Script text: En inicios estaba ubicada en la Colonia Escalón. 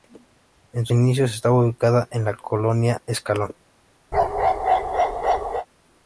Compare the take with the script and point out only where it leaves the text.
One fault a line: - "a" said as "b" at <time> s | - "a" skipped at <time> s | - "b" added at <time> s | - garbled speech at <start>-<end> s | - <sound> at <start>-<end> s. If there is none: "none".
- bark at 4.1-5.7 s